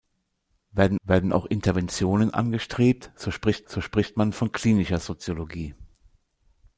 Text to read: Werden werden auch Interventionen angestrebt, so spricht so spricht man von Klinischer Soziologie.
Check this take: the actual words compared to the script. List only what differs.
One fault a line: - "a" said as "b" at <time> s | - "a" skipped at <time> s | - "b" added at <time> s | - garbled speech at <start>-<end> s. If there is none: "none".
none